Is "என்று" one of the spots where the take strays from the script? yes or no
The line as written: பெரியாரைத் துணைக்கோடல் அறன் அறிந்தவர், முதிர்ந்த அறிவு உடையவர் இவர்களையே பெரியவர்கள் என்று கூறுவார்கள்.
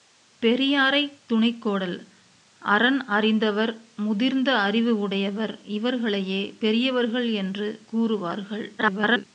no